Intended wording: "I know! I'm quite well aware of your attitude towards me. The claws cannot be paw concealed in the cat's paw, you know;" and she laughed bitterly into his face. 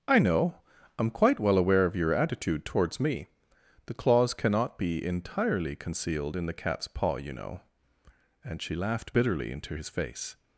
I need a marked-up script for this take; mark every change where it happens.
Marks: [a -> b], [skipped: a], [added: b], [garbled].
"I know! I'm quite well aware of your attitude towards me. The claws cannot be [paw -> entirely] concealed in the cat's paw, you know;" and she laughed bitterly into his face.